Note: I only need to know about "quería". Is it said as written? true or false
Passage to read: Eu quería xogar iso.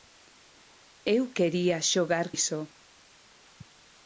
true